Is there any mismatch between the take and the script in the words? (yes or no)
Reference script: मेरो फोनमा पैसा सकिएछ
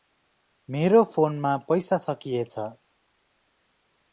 no